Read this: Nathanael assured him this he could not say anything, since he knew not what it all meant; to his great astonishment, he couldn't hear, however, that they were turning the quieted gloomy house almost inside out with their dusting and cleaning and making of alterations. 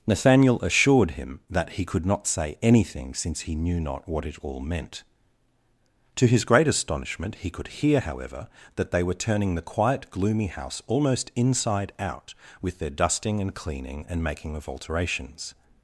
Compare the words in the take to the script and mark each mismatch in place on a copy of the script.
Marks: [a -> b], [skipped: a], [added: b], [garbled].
Nathanael assured him [this -> that] he could not say anything, since he knew not what it all meant; to his great astonishment, he [couldn't -> could] hear, however, that they were turning the [quieted -> quiet] gloomy house almost inside out with their dusting and cleaning and making of alterations.